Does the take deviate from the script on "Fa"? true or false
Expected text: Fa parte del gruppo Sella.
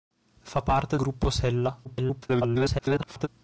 false